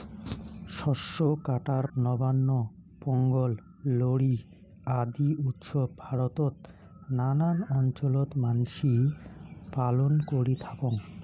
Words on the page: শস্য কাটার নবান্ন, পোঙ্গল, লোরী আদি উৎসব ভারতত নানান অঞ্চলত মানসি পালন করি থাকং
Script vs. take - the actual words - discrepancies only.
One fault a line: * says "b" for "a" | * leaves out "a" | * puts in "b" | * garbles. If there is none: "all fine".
all fine